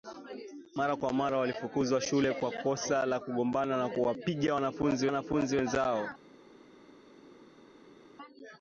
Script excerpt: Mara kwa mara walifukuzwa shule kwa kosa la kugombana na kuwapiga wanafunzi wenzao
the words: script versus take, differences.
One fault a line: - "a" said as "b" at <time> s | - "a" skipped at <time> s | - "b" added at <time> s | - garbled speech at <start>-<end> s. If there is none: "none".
- "wanafunzi" added at 5.1 s